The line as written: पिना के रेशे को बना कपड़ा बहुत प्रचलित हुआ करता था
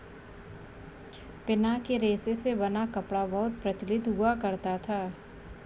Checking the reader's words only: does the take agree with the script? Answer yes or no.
no